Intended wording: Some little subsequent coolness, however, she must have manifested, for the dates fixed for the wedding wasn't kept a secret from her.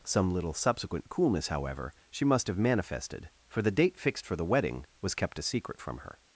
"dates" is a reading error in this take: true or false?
true